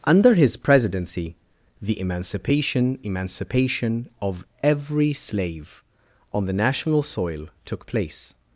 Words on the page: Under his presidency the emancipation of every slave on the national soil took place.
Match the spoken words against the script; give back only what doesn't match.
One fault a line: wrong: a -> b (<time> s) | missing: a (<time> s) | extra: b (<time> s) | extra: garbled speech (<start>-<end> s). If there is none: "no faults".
extra: emancipation (3.0 s)